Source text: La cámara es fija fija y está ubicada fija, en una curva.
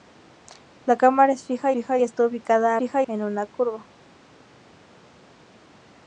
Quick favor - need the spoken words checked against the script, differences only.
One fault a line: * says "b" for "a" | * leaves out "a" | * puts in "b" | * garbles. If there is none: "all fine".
all fine